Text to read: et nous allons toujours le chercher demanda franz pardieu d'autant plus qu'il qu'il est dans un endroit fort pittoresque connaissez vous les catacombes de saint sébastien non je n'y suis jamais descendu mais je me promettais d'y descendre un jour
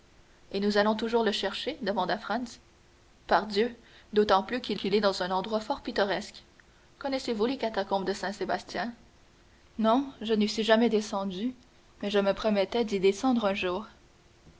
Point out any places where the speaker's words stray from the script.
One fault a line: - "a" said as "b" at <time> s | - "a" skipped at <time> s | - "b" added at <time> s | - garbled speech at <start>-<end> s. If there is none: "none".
none